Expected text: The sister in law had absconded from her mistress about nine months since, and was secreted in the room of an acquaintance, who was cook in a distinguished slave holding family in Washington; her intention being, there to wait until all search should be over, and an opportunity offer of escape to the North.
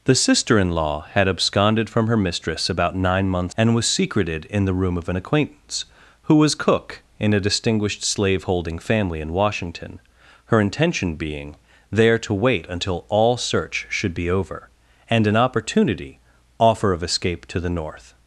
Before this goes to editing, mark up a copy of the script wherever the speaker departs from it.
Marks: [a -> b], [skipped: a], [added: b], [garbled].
The sister in law had absconded from her mistress about nine months [skipped: since,] and was secreted in the room of an acquaintance, who was cook in a distinguished slave holding family in Washington; her intention being, there to wait until all search should be over, and an opportunity offer of escape to the North.